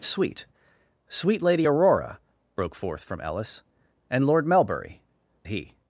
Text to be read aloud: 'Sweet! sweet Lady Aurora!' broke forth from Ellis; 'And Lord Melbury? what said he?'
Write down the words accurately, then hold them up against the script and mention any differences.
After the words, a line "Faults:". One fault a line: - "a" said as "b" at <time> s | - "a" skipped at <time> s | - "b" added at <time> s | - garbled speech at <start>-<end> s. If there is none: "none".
'Sweet! sweet Lady Aurora!' broke forth from Ellis; 'And Lord Melbury? he?'
Faults:
- "what said" skipped at 5.0 s